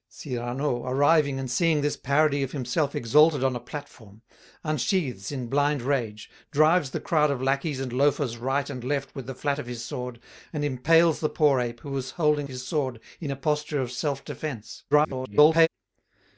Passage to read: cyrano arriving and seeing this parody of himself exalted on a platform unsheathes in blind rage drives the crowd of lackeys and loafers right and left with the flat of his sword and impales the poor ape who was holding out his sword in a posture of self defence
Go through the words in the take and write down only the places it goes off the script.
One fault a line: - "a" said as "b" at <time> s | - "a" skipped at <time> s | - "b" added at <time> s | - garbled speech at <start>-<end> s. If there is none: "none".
- "out" skipped at 12.5 s
- garbled speech at 14.9-15.7 s